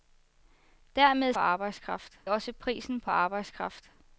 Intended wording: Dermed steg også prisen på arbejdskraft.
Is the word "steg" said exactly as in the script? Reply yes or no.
no